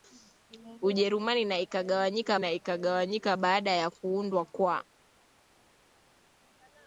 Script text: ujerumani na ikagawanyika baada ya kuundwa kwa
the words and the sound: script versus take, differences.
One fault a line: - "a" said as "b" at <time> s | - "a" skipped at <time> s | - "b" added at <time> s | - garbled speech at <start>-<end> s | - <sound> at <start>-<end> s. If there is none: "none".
- "na ikagawanyika" added at 2.4 s